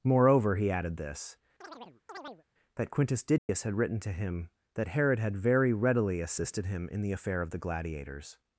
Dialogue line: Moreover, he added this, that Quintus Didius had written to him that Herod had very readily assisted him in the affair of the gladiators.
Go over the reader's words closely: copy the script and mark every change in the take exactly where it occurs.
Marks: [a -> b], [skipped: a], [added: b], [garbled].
Moreover, he added this, that Quintus Didius had written to him that Herod had very readily assisted him in the affair of the gladiators.